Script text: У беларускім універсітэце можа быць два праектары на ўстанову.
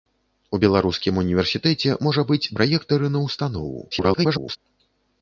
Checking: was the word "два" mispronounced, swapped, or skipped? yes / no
yes